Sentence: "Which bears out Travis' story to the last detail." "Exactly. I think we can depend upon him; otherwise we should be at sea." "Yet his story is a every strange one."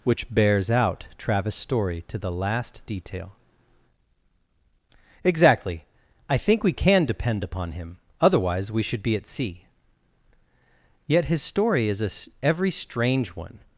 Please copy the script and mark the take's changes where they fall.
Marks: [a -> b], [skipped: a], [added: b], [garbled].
"Which bears out Travis' story to the last detail." "Exactly. I think we can depend upon him; otherwise we should be at sea." "Yet his story is a every strange one."